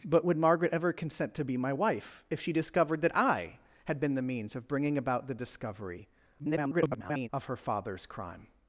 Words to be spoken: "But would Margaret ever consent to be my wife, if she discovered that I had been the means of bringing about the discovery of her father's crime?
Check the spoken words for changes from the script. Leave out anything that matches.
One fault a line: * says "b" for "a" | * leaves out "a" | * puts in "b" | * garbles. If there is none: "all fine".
* garbles